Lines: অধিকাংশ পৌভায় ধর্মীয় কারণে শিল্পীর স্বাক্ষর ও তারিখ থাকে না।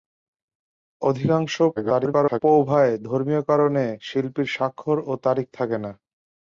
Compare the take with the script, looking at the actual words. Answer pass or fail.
fail